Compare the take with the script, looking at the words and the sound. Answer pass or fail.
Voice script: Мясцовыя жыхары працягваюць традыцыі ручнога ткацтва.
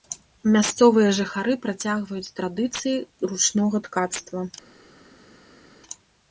pass